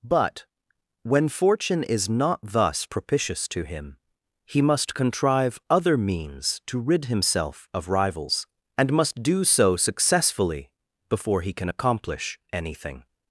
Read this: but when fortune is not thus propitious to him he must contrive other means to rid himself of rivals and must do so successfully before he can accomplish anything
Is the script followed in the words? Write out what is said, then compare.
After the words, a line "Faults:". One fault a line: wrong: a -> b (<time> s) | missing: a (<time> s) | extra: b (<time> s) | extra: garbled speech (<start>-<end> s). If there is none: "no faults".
but when fortune is not thus propitious to him he must contrive other means to rid himself of rivals and must do so successfully before he can accomplish anything
Faults:
no faults